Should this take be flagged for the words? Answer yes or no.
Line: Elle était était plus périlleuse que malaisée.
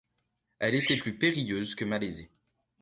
yes